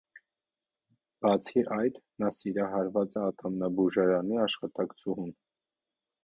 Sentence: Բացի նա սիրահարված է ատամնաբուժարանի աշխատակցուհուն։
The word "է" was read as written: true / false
true